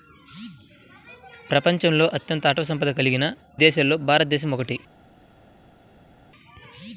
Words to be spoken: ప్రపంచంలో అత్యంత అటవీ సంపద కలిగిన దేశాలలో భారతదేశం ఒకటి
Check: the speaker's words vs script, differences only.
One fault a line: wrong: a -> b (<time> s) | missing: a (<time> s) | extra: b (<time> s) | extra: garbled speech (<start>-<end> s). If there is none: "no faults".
no faults